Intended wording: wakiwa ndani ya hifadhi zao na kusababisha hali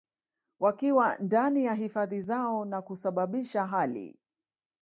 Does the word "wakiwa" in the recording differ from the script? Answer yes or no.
no